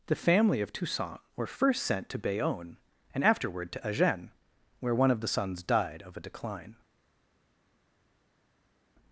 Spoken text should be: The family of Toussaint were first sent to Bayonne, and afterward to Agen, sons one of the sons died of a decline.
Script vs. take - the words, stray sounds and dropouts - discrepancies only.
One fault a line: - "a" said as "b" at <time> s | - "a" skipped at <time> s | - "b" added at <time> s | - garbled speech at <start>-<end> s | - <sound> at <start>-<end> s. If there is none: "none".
- "sons" said as "where" at 4.8 s